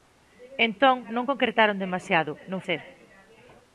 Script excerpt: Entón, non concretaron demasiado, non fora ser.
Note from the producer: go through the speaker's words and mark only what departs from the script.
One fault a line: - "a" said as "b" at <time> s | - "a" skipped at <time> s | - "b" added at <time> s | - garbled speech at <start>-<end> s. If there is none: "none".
- "fora" skipped at 2.6 s